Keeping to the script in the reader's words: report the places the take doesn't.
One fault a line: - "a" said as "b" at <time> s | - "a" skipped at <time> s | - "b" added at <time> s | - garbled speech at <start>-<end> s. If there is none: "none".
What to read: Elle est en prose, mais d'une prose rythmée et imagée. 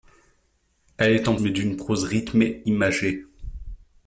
- "prose" skipped at 1.4 s
- "et" skipped at 2.6 s